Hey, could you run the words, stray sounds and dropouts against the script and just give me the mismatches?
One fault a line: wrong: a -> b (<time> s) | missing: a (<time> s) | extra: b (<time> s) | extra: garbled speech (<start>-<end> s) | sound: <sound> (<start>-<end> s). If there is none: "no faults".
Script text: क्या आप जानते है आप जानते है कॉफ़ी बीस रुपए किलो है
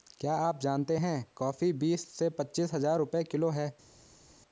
wrong: आप जानते है कॉफ़ी बीस -> कॉफ़ी बीस से पच्चीस हज़ार (1.3 s)